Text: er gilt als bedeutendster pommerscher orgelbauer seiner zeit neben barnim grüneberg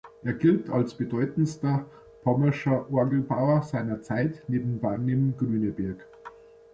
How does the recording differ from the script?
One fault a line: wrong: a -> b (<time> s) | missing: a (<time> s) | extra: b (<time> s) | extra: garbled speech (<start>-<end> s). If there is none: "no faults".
no faults